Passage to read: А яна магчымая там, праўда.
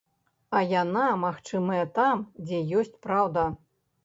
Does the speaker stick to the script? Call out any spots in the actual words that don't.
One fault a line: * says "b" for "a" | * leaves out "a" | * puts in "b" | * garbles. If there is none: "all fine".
* puts in "дзе ёсць"